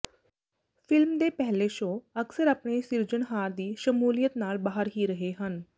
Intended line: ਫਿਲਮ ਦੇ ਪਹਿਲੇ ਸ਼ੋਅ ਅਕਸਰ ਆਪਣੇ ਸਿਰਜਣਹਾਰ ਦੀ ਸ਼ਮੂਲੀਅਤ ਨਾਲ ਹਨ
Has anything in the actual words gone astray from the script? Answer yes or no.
yes